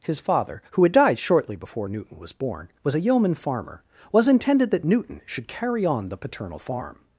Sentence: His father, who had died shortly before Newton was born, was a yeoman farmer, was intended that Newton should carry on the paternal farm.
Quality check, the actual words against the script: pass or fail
pass